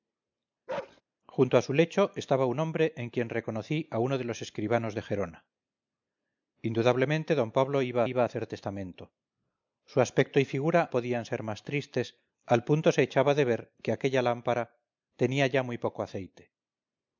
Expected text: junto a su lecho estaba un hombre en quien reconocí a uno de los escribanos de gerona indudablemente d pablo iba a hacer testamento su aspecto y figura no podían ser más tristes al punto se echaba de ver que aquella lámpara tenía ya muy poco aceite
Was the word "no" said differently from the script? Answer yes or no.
yes